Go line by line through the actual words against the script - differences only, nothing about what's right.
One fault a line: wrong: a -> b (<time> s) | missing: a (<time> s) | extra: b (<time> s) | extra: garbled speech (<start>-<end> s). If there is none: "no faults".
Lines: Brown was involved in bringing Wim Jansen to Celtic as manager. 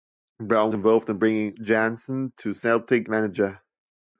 missing: was (0.7 s)
missing: Wim (1.6 s)
missing: as (3.1 s)